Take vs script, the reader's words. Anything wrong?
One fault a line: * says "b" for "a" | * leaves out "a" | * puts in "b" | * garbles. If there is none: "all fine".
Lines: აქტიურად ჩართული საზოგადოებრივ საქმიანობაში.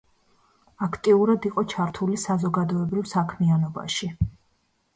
* puts in "იყო"